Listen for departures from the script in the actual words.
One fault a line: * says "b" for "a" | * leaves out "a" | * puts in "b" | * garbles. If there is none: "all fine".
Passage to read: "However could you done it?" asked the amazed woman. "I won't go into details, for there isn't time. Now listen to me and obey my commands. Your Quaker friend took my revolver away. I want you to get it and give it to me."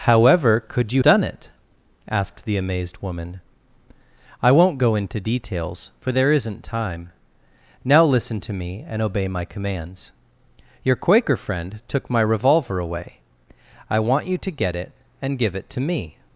all fine